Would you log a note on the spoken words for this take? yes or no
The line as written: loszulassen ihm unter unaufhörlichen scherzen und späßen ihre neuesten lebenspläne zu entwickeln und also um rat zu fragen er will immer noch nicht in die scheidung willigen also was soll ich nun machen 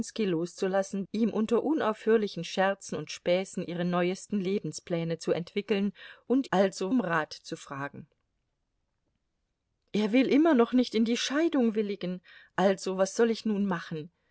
no